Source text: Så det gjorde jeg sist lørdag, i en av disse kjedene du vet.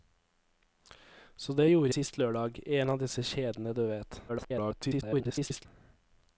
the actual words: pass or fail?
fail